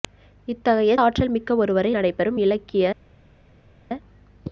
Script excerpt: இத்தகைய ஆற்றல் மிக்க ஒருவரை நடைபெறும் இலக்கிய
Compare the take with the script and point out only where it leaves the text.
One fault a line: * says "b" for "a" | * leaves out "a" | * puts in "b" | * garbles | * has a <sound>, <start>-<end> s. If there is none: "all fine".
all fine